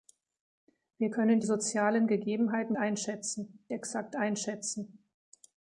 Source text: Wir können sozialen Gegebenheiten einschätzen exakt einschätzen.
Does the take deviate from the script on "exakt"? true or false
false